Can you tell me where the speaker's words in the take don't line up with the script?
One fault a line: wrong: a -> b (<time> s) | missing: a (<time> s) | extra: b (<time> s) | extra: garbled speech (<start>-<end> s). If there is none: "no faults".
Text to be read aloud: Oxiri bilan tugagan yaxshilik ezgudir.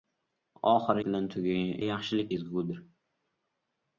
no faults